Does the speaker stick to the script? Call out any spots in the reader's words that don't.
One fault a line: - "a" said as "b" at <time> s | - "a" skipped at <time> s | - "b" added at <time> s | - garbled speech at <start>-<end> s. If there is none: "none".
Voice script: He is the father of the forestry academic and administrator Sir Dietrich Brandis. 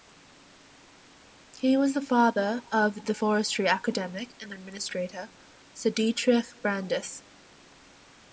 - "is" said as "was" at 1.8 s